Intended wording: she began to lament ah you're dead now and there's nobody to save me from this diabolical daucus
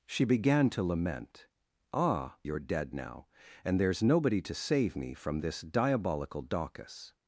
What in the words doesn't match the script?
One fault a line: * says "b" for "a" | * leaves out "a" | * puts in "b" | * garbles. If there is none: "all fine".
all fine